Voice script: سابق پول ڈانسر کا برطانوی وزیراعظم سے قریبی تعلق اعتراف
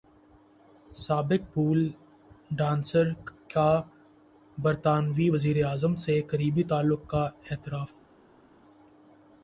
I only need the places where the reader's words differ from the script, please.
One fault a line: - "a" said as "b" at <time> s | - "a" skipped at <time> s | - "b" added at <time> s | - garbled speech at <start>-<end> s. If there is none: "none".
- "کا" added at 7.1 s